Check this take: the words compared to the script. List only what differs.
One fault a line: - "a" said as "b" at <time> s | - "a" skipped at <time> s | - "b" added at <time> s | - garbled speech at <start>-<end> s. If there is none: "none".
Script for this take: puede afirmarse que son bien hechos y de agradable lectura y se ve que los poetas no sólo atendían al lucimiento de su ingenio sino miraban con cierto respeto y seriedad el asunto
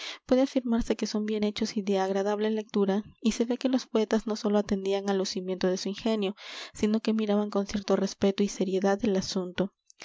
- "que" added at 7.0 s